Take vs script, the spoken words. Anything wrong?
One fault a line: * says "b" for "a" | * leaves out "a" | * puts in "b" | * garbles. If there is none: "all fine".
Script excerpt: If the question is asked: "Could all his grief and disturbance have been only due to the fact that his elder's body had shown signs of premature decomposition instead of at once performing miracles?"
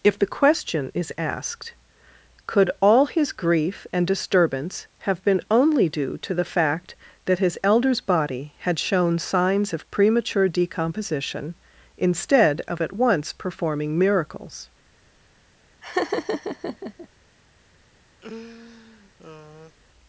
all fine